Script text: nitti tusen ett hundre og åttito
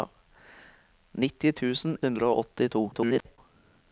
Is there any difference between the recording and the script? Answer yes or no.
yes